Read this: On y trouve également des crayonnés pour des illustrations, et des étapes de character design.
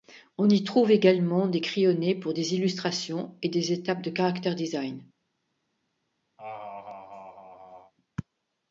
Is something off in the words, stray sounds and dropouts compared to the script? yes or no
yes